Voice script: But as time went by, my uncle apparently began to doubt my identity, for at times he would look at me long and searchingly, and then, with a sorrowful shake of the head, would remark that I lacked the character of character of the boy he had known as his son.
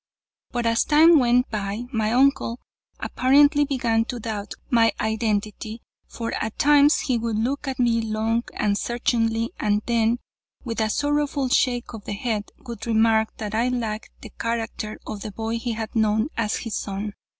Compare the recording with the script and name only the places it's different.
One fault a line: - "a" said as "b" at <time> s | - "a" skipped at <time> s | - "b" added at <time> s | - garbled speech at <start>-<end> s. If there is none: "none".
- "character of" skipped at 15.2 s